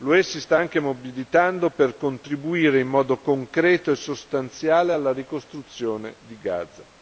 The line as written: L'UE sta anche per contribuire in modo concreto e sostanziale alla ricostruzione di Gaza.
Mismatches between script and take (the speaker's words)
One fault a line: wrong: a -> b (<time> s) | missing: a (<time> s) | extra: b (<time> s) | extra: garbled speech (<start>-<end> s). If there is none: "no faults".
extra: si (0.2 s)
extra: mobilitando (0.8 s)